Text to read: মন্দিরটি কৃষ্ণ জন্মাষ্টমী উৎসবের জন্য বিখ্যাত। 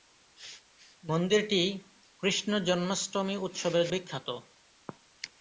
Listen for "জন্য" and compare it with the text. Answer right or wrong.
wrong